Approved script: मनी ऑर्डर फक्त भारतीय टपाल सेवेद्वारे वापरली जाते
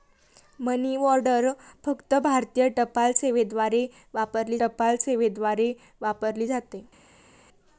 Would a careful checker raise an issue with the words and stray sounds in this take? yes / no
yes